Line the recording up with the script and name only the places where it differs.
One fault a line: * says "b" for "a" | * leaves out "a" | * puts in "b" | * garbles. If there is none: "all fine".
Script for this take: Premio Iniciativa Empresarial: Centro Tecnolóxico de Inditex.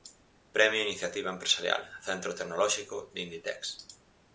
all fine